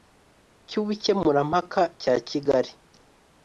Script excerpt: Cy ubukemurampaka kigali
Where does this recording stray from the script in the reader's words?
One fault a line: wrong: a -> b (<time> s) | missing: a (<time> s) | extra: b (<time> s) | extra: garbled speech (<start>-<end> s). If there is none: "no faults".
extra: cya (2.0 s)